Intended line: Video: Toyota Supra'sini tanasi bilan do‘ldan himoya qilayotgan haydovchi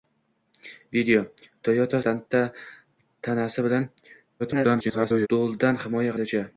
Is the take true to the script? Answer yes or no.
no